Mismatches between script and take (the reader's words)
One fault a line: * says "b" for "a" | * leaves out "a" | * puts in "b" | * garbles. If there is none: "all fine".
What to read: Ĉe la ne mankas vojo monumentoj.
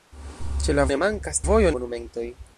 all fine